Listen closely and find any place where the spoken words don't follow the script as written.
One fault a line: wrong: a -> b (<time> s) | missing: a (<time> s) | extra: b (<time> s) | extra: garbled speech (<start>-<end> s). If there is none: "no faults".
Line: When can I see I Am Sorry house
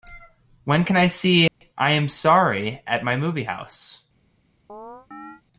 extra: at my movie (2.9 s)